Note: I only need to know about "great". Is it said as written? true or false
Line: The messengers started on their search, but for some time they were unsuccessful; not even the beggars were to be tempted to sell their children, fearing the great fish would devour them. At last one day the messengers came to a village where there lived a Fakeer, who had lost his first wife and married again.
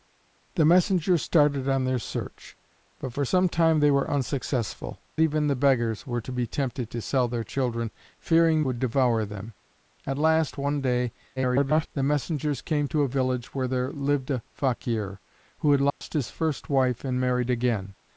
false